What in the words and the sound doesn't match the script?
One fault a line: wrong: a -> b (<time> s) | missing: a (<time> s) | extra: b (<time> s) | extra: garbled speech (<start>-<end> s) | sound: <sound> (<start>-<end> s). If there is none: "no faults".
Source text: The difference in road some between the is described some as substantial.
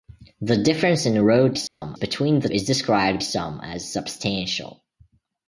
sound: dropout (1.7-1.8 s)